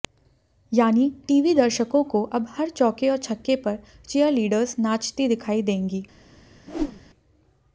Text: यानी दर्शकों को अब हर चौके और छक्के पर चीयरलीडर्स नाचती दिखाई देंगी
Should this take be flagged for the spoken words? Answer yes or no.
yes